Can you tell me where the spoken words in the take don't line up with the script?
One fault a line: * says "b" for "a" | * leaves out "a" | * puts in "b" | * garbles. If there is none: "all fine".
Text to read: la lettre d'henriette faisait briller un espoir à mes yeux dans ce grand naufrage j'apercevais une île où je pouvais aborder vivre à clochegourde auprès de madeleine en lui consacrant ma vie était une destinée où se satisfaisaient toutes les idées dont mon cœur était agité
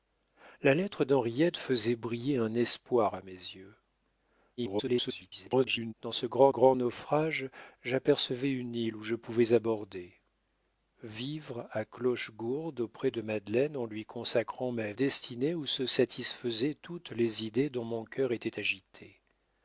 * garbles
* puts in "grand"
* leaves out "vie était une"